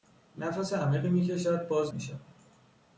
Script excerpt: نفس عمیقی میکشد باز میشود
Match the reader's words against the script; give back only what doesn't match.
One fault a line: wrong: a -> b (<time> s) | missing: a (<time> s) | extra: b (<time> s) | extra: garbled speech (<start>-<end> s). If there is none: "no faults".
no faults